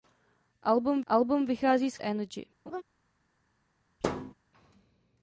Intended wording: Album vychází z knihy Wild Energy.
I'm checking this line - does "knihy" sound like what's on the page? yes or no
no